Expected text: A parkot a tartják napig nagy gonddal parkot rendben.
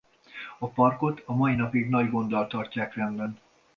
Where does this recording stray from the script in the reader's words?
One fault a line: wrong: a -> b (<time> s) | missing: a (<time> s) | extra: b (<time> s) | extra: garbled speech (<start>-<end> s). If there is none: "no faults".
wrong: tartják -> mai (1.4 s)
wrong: parkot -> tartják (2.5 s)